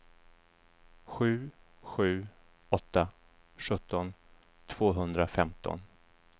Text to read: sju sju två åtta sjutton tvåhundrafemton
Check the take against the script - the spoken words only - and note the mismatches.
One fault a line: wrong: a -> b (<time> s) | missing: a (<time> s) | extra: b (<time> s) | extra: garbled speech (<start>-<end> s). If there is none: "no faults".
missing: två (2.3 s)